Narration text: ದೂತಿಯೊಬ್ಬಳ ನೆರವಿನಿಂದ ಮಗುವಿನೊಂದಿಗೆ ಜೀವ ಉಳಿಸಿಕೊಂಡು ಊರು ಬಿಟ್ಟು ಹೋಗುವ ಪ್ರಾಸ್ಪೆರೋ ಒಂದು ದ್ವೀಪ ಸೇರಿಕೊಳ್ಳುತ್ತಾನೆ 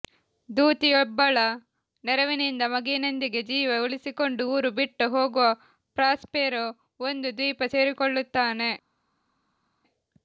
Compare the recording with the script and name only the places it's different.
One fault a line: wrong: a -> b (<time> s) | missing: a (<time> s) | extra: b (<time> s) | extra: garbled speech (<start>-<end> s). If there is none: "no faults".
no faults